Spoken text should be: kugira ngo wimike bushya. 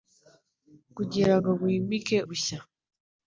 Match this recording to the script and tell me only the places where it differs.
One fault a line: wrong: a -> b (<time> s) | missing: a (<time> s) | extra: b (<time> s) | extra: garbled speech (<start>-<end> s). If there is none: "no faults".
no faults